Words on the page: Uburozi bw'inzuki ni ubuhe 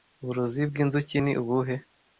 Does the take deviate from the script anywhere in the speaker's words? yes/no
no